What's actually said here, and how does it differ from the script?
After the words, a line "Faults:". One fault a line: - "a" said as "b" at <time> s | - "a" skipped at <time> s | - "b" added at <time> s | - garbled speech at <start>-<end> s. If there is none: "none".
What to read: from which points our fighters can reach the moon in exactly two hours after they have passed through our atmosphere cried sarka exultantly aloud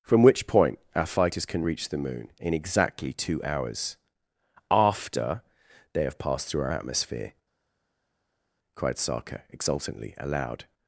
from which point our fighters can reach the moon in exactly two hours after they have passed through our atmosphere cried sarka exultantly aloud
Faults:
- "points" said as "point" at 0.5 s